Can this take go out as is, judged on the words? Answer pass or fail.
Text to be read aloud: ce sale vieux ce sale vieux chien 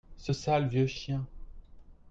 fail